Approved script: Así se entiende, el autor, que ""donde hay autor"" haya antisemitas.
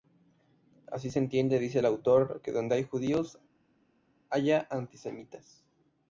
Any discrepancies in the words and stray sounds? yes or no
yes